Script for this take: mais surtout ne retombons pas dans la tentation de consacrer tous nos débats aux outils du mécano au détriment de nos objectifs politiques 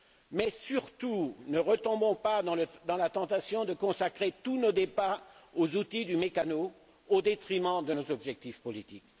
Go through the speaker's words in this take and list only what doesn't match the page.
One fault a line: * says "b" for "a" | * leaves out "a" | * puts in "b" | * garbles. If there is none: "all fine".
all fine